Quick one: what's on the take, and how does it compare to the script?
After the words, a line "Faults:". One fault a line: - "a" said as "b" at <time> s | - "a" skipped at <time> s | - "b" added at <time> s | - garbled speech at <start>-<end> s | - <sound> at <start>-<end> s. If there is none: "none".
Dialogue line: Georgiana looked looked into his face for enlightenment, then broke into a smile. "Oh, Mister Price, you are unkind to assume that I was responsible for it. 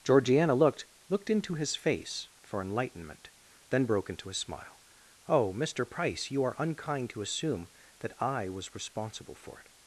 Georgiana looked looked into his face for enlightenment, then broke into a smile. "Oh, Mister Price, you are unkind to assume that I was responsible for it.
Faults:
none